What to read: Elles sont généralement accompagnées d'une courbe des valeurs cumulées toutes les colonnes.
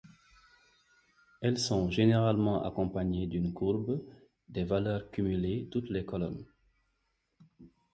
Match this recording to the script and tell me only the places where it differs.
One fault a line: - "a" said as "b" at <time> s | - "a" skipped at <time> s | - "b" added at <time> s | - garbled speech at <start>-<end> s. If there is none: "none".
none